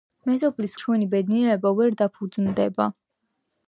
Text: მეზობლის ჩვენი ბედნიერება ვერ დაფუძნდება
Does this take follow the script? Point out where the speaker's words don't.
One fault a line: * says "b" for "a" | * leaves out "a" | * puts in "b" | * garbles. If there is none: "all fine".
all fine